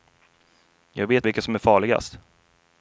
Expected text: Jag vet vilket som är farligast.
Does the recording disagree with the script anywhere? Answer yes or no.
no